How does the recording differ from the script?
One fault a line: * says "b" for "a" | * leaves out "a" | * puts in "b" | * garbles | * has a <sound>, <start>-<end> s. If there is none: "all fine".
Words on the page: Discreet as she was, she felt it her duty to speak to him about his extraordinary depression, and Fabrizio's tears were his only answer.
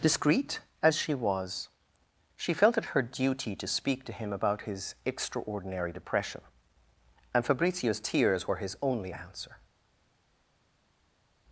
all fine